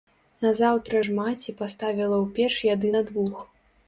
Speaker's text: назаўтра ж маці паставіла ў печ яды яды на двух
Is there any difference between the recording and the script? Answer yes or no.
yes